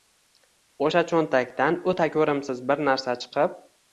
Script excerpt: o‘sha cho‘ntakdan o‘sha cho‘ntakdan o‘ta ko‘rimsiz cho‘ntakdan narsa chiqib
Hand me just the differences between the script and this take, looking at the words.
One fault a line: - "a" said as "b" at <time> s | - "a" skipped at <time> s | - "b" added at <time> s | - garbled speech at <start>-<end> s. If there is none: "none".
- "o‘sha cho‘ntakdan" skipped at 1.8 s
- "cho‘ntakdan" said as "bir" at 2.7 s